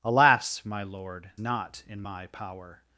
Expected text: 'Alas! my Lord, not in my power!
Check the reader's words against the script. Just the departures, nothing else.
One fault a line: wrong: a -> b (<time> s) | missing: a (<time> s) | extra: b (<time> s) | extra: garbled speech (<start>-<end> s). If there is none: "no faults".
no faults